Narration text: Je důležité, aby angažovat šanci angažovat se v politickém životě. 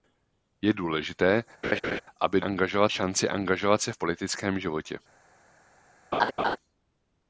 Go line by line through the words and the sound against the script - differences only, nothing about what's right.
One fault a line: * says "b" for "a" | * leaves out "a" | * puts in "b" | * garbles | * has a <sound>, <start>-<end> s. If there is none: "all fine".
* has a laugh, 1.6-2.0 s
* has a laugh, 6.1-6.6 s